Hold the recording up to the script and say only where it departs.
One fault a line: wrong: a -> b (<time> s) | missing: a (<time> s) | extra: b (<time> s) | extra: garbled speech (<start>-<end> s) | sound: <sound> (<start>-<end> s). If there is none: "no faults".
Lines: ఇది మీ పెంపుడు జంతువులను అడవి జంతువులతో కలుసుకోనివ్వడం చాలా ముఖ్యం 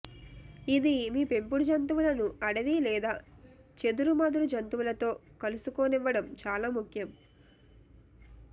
extra: లేదా చెదురుమదురు (2.9 s)